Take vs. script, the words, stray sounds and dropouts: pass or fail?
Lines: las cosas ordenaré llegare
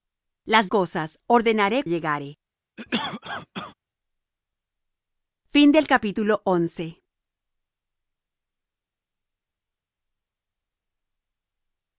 fail